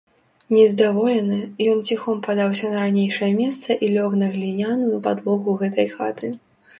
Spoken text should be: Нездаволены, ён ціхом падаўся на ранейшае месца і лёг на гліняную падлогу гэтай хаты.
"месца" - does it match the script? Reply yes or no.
yes